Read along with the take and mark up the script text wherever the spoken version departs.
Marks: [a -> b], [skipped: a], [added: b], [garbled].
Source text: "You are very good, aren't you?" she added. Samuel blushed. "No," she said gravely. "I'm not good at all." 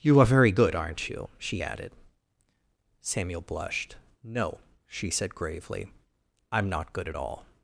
"You are very good, aren't you?" she added. Samuel blushed. "No," she said gravely. "I'm not good at all."